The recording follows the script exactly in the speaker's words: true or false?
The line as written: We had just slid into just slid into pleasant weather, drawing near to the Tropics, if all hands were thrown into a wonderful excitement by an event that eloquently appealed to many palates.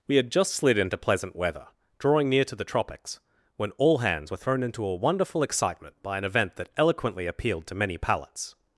false